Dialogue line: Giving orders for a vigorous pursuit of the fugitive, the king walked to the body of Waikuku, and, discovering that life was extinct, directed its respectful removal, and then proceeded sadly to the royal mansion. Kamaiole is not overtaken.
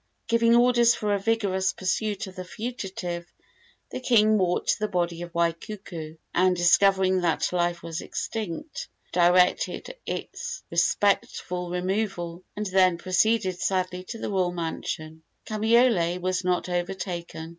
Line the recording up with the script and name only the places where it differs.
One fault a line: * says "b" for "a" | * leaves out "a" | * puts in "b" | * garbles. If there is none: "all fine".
* says "was" for "is"